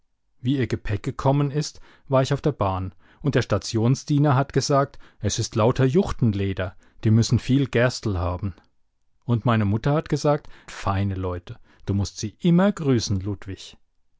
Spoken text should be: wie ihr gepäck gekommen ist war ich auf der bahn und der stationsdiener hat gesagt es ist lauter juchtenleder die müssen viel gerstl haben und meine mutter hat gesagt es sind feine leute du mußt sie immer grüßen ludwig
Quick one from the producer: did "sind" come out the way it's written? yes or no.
no